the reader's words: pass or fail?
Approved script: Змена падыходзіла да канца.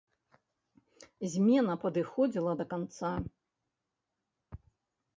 pass